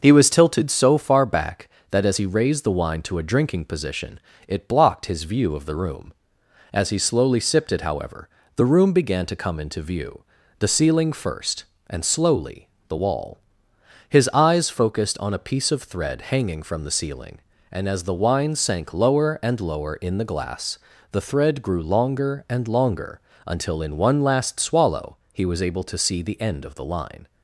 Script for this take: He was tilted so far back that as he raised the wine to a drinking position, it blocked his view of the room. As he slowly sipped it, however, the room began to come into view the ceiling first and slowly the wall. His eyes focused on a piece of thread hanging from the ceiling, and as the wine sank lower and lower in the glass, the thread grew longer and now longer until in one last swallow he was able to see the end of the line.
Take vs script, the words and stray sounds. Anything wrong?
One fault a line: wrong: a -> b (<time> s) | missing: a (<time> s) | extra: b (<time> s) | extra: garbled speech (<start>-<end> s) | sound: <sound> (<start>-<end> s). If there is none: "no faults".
missing: now (22.7 s)